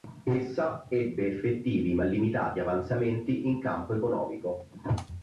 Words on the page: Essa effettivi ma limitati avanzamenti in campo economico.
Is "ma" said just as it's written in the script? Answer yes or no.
yes